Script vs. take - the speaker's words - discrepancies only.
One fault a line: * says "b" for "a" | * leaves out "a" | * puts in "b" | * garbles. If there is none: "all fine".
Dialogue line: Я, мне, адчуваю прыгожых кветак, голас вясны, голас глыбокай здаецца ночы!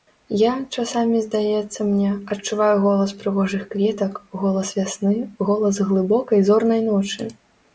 * puts in "часамі здаецца"
* puts in "голас"
* says "зорнай" for "здаецца"